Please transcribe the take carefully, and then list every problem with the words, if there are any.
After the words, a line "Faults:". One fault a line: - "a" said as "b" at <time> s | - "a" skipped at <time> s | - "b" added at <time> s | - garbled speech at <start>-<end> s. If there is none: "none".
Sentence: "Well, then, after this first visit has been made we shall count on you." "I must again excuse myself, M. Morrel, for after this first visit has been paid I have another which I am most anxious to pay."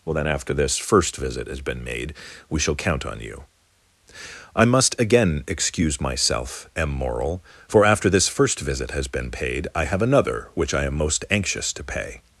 "Well, then, after this first visit has been made we shall count on you." "I must again excuse myself, M. Morrel, for after this first visit has been paid I have another which I am most anxious to pay."
Faults:
none